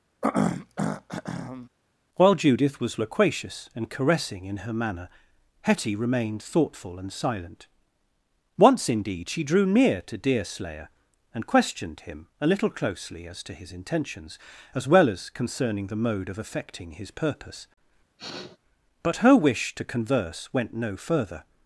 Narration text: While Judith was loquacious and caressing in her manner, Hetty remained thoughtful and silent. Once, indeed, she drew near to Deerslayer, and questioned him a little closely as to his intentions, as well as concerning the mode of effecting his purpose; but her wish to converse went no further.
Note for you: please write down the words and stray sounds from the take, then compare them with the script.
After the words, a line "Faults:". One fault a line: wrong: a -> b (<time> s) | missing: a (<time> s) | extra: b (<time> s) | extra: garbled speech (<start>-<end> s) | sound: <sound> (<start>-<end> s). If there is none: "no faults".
While Judith was loquacious and caressing in her manner, Hetty remained thoughtful and silent. Once, indeed, she drew near to Deerslayer, and questioned him a little closely as to his intentions, as well as concerning the mode of effecting his purpose; but her wish to converse went no further.
Faults:
sound: throat clearing (0.2-1.7 s)
sound: sniff (18.2-18.6 s)